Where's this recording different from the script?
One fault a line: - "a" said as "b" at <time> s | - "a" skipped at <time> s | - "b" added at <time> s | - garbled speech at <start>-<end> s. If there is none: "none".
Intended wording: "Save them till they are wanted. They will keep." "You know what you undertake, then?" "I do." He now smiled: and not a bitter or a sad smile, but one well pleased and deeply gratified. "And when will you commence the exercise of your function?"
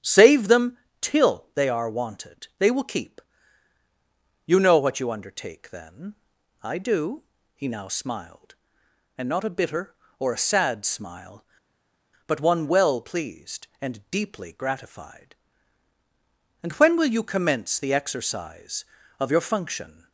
none